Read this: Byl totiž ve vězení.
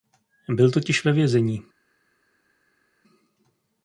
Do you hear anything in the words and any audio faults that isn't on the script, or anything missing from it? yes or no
no